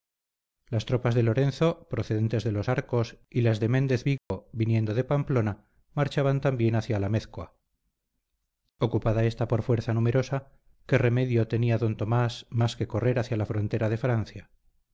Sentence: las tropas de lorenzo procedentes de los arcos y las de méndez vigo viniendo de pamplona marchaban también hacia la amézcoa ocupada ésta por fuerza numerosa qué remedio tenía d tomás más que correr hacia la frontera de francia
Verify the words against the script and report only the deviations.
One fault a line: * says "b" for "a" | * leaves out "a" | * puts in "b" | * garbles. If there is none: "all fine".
all fine